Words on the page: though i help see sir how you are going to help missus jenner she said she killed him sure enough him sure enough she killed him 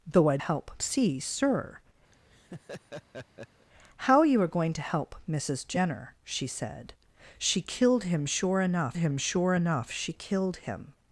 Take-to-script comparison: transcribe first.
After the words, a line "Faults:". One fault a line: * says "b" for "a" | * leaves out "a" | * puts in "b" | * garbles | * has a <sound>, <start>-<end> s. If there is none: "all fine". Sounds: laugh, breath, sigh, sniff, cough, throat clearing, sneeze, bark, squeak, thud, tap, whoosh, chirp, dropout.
though i help see sir how you are going to help missus jenner she said she killed him sure enough him sure enough she killed him
Faults:
* has a laugh, 2.1-3.7 s